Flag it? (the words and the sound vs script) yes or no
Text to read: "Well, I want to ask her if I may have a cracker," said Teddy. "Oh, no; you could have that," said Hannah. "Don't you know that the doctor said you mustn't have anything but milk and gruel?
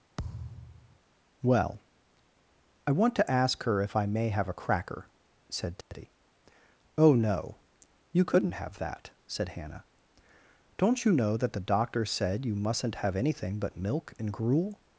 yes